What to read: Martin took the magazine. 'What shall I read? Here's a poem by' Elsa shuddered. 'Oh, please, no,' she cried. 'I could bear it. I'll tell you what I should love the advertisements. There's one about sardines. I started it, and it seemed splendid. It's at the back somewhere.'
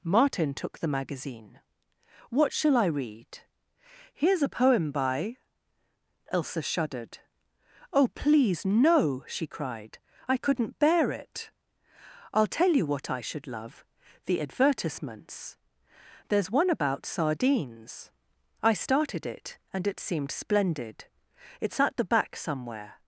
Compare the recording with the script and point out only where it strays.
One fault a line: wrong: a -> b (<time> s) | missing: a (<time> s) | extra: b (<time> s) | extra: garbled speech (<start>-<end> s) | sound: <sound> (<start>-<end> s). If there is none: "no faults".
wrong: could -> couldn't (10.4 s)